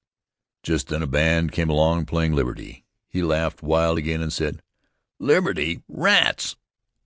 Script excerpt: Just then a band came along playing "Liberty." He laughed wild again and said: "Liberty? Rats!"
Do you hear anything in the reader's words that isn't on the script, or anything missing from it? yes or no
no